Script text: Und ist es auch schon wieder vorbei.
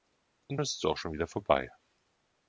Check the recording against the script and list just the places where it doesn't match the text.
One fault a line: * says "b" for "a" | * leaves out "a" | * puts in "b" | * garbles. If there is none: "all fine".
all fine